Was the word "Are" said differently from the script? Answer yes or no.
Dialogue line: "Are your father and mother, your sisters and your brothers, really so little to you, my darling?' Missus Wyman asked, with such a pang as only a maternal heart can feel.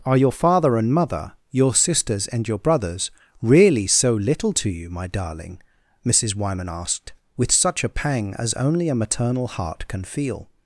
no